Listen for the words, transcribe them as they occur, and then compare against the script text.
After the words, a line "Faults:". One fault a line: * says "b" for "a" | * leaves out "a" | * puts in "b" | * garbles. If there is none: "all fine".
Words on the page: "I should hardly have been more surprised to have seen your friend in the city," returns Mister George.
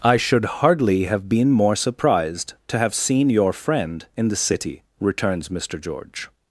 "I should hardly have been more surprised to have seen your friend in the city," returns Mister George.
Faults:
all fine